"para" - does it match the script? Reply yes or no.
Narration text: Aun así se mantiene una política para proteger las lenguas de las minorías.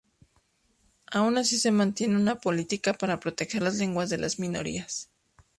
yes